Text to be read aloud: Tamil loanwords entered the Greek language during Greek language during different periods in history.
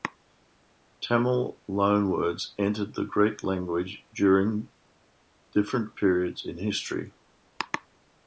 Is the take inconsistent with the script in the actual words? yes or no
yes